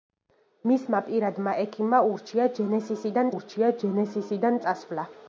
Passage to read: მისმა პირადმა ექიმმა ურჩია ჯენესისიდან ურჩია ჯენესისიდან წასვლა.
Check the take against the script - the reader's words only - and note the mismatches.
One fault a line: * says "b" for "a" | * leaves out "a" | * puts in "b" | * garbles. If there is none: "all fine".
all fine